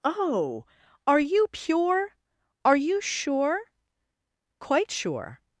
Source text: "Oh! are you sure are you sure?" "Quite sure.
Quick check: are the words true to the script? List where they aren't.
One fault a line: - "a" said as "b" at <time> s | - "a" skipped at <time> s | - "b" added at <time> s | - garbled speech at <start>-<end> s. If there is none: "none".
- "sure" said as "pure" at 1.5 s